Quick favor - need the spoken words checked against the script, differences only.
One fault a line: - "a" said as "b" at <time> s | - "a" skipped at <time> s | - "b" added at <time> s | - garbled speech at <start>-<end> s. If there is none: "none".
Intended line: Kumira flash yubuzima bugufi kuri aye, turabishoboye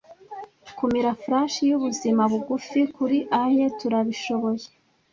none